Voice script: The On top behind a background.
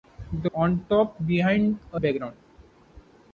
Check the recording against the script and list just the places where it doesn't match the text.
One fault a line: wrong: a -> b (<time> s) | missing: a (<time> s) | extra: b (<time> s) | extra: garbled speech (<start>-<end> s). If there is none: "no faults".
no faults